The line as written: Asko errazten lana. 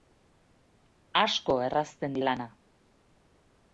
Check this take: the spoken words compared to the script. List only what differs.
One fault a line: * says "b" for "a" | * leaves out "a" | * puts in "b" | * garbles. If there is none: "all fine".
all fine